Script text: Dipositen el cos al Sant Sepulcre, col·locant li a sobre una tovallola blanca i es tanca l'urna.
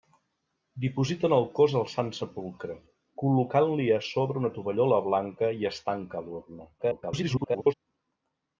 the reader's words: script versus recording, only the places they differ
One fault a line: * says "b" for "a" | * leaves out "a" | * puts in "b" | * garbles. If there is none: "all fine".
* garbles